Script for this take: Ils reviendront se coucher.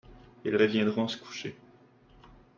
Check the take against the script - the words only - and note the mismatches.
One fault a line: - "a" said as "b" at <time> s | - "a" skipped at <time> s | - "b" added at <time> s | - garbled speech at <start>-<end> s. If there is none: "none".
none